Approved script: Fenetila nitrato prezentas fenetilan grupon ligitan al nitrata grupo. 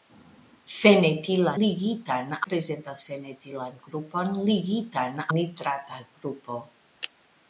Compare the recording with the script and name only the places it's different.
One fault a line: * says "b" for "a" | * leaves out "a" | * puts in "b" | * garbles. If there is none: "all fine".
* says "ligitan" for "nitrato"
* leaves out "al"